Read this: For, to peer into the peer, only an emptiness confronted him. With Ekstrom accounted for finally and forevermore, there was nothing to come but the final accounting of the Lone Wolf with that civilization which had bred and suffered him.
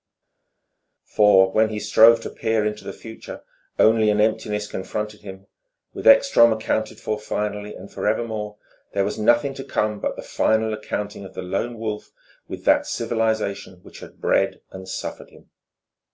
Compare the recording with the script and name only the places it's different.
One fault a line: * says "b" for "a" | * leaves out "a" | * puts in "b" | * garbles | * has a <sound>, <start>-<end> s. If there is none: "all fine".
* puts in "when he strove"
* says "future" for "peer"